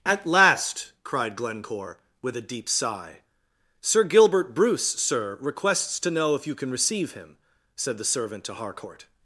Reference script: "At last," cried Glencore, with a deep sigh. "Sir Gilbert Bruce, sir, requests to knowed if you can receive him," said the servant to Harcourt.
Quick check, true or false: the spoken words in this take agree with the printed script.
false